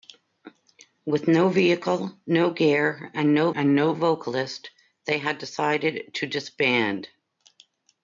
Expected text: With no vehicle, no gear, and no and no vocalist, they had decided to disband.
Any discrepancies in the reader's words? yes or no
no